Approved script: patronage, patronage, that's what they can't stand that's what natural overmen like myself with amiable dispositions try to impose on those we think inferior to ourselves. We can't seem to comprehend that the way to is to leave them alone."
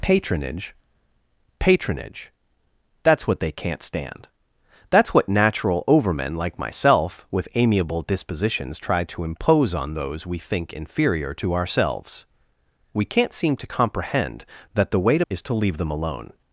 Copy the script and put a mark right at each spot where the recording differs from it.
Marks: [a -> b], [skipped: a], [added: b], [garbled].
patronage, patronage, that's what they can't stand that's what natural overmen like myself with amiable dispositions try to impose on those we think inferior to ourselves. We can't seem to comprehend that the way to is to leave them alone."